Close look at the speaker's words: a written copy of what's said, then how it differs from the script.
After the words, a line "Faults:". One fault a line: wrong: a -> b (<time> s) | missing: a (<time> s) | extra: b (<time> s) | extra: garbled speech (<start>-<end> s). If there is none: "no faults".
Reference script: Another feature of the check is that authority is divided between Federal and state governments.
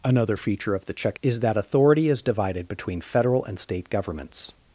Another feature of the check is that authority is divided between Federal and state governments.
Faults:
no faults